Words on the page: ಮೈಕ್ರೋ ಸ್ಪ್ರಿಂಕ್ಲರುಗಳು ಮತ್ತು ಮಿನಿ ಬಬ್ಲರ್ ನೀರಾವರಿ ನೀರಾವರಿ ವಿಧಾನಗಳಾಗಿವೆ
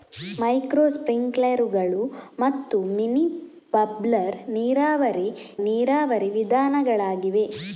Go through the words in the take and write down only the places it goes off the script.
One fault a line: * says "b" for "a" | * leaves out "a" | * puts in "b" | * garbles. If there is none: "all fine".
all fine